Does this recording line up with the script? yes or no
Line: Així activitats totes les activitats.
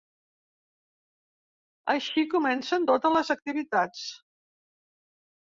no